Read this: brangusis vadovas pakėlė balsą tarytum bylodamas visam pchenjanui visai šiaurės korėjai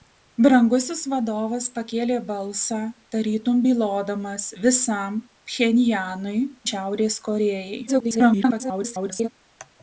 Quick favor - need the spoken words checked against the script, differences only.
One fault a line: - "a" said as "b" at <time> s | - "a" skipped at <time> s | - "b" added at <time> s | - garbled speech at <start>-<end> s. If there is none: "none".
- "visai" skipped at 6.4 s
- garbled speech at 7.9-9.3 s